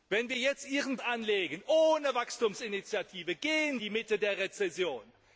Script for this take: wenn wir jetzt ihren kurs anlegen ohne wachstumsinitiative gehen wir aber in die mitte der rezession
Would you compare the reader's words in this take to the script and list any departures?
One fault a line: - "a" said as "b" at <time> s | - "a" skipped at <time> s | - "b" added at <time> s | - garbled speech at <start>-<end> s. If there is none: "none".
- "kurs" skipped at 1.0 s
- "wir aber in" skipped at 3.8 s